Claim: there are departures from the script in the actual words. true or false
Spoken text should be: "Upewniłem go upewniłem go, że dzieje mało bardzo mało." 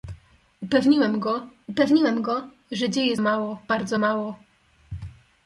false